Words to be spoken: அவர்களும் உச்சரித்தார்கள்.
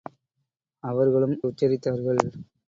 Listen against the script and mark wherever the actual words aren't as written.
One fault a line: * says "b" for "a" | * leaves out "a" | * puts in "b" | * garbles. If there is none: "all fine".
all fine